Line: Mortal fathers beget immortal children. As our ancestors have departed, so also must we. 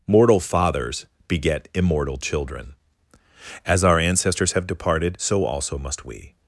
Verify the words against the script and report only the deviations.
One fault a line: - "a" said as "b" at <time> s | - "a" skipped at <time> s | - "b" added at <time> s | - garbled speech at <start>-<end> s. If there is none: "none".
none